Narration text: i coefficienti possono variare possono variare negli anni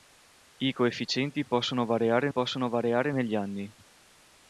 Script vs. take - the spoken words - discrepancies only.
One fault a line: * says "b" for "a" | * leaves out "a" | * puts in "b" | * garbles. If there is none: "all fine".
all fine